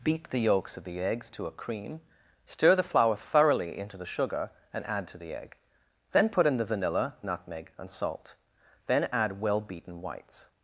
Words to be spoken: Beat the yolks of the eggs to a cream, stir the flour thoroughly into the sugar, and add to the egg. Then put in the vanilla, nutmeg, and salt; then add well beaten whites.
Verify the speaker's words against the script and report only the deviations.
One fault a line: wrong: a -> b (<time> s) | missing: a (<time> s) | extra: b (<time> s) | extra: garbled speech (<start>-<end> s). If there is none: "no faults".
no faults